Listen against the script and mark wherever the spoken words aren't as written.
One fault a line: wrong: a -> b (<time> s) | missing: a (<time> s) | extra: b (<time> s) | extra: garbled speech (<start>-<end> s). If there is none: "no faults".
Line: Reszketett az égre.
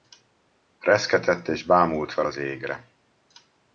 extra: és bámult fel (1.5 s)